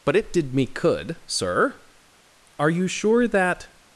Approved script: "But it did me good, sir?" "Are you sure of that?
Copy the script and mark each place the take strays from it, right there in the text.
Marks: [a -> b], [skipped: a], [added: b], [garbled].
"But it did me [good, -> could] sir?" "Are you sure [skipped: of] that?